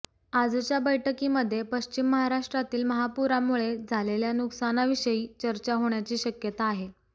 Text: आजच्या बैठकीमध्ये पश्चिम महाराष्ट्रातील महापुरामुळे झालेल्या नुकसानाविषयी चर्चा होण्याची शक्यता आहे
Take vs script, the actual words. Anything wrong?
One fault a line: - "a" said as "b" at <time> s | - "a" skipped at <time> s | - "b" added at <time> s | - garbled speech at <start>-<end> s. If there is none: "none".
none